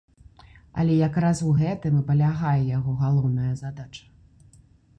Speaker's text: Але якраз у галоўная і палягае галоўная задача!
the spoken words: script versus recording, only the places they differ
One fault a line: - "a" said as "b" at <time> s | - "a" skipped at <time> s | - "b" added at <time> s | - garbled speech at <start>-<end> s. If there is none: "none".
- "галоўная" said as "гэтым" at 1.6 s
- "яго" added at 2.8 s